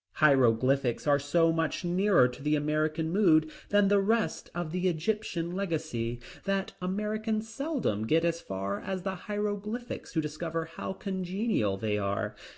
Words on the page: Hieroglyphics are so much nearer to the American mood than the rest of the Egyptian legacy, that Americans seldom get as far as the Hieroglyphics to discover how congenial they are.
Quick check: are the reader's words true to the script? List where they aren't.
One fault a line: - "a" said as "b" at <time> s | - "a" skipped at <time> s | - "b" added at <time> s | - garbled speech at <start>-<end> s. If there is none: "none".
none